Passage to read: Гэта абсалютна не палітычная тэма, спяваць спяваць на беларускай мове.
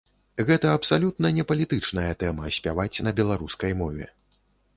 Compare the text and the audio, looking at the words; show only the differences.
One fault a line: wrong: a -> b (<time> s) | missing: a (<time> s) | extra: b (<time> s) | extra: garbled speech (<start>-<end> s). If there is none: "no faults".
missing: спяваць (3.0 s)